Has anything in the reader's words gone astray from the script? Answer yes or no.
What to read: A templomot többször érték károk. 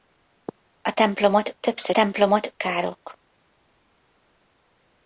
yes